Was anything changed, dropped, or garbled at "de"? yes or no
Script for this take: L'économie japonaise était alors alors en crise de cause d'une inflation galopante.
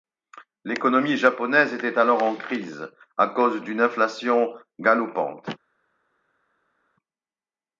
yes